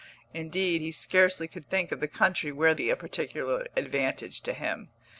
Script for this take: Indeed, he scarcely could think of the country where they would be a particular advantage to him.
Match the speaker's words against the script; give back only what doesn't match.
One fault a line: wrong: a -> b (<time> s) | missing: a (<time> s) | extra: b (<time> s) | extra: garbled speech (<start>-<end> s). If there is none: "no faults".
missing: they would (2.7 s)